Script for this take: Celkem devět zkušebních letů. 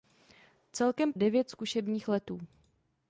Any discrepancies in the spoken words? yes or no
no